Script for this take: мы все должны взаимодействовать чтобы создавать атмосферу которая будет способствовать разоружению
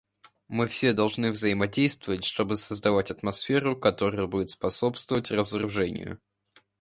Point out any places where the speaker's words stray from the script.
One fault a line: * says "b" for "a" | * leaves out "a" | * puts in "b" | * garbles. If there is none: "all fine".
all fine